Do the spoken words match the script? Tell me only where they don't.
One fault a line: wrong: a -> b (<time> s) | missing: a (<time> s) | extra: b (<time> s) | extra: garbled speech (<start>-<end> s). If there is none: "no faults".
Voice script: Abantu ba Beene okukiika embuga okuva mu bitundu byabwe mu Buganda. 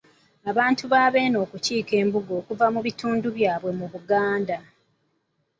no faults